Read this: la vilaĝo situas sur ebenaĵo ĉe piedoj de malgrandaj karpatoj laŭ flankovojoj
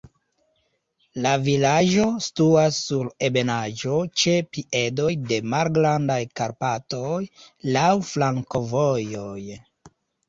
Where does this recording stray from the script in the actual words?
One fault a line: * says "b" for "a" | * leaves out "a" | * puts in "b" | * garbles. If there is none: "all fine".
all fine